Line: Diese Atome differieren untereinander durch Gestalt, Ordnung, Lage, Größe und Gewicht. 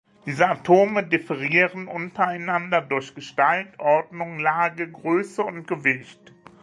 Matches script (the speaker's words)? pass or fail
pass